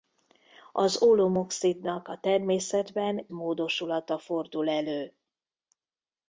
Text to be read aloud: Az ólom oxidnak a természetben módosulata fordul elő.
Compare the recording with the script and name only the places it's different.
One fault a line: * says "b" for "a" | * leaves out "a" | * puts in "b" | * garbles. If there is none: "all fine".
all fine